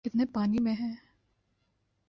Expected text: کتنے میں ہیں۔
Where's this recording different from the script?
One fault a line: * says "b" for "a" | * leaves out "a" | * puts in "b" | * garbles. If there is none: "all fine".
* puts in "پانی"